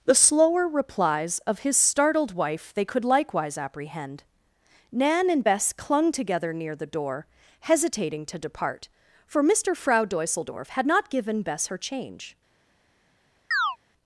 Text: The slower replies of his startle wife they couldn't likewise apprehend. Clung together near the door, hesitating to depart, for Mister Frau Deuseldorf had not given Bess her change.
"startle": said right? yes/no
no